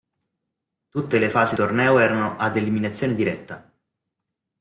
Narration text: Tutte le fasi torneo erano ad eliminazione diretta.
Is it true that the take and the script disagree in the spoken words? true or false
false